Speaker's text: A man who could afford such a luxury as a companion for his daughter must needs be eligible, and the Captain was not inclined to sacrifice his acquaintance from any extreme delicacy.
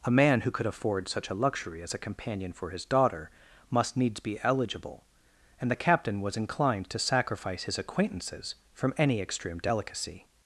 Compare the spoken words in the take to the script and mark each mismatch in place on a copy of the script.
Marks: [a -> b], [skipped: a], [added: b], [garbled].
A man who could afford such a luxury as a companion for his daughter must needs be eligible, and the Captain was [skipped: not] inclined to sacrifice his [acquaintance -> acquaintances] from any extreme delicacy.